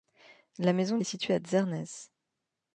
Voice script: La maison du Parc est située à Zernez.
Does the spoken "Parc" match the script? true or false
false